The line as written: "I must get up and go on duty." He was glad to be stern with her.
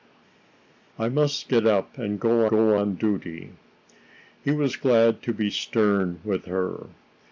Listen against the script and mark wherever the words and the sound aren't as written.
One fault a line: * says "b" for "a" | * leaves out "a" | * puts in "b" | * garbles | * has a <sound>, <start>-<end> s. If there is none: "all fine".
* puts in "go"